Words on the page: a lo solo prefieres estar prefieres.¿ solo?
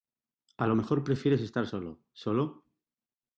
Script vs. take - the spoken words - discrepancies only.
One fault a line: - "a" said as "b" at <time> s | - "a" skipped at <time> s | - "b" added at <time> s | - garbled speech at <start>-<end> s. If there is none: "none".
- "solo" said as "mejor" at 0.7 s
- "prefieres" said as "solo" at 1.6 s